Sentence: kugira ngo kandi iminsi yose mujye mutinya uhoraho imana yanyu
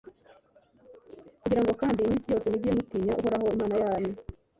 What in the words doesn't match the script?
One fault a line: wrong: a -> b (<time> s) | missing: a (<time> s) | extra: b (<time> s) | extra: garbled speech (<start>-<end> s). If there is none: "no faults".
no faults